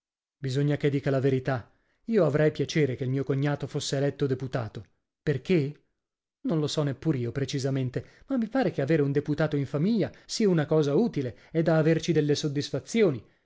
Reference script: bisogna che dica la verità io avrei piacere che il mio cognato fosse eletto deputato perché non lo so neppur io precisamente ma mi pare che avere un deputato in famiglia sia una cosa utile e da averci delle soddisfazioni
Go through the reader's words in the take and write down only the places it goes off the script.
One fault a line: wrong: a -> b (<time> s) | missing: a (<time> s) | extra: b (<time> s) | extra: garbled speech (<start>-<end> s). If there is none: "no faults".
no faults